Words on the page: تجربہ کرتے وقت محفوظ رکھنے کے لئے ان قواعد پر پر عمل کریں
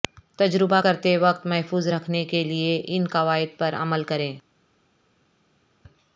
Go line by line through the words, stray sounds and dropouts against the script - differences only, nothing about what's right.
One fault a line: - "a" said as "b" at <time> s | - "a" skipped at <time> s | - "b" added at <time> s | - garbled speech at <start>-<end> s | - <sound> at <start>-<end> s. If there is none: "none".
- "پر" skipped at 3.7 s